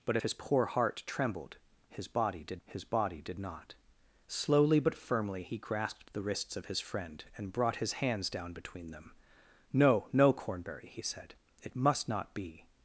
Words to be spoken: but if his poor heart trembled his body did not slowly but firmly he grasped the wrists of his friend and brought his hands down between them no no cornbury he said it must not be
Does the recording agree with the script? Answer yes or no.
no